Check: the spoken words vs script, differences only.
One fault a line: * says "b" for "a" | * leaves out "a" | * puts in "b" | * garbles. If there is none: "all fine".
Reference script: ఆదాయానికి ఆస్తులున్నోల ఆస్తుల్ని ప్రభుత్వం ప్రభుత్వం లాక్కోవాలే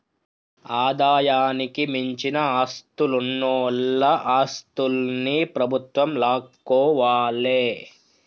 * puts in "మించిన"
* leaves out "ప్రభుత్వం"